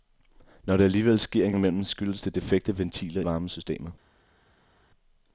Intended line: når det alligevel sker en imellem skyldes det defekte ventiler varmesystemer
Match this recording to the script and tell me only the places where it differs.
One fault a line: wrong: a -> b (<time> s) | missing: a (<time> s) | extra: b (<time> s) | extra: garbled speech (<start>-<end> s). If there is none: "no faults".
no faults